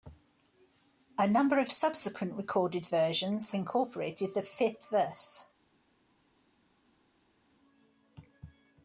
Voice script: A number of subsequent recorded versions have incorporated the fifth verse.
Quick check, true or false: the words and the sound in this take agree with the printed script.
false